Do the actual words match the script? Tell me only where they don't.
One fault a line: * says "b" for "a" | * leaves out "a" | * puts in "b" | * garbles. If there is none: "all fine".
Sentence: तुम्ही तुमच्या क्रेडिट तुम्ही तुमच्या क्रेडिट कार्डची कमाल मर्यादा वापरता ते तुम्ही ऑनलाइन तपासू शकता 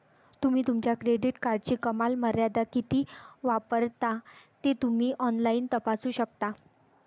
* leaves out "तुम्ही तुमच्या क्रेडिट"
* puts in "किती"